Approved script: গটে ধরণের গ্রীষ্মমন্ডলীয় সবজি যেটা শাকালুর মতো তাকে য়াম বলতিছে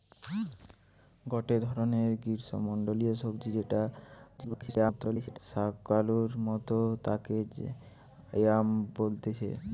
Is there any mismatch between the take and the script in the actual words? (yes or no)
yes